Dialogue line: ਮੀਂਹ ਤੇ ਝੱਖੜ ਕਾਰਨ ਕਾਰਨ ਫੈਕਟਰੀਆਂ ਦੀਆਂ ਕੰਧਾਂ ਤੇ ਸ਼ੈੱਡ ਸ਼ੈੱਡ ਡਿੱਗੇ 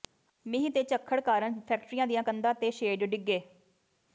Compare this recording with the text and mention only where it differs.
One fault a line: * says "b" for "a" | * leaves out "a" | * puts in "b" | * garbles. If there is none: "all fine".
* leaves out "ਕਾਰਨ"
* leaves out "ਸ਼ੈੱਡ"